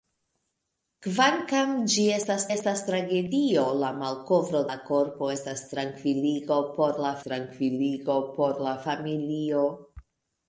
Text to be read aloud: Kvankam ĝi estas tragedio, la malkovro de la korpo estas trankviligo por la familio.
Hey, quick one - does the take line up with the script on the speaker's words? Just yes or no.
no